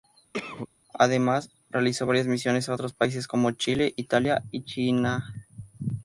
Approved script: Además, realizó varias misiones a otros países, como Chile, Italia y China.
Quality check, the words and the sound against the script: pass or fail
fail